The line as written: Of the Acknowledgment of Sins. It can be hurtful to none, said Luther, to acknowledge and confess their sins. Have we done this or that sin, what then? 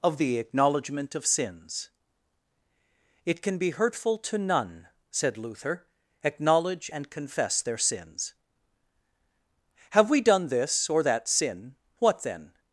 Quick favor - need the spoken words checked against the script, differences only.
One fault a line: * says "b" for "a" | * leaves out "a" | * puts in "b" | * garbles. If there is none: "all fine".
* leaves out "to"